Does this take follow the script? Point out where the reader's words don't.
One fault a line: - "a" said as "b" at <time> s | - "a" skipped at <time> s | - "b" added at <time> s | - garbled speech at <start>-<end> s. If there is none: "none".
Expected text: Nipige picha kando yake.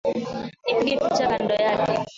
none